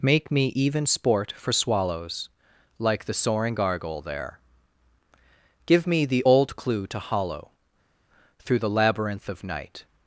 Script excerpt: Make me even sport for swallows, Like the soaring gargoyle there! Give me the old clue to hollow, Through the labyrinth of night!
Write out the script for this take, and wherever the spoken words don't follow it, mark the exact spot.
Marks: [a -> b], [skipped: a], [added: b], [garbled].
Make me even sport for swallows, Like the soaring gargoyle there! Give me the old clue to hollow, Through the labyrinth of night!